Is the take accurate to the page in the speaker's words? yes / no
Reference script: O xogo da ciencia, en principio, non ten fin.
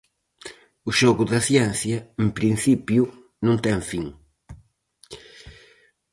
yes